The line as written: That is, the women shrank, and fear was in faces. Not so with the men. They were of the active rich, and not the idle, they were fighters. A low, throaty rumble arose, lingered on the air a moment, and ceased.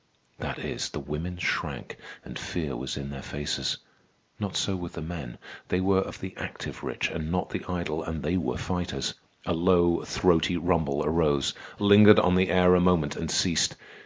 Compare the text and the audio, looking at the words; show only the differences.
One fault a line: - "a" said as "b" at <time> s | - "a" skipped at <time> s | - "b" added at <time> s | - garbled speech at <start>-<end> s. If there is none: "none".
- "their" added at 3.1 s
- "and" added at 8.0 s